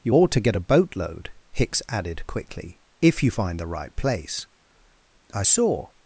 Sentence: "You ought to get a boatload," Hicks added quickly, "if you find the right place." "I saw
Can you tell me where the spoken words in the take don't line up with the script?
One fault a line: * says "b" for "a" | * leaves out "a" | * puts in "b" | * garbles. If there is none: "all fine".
all fine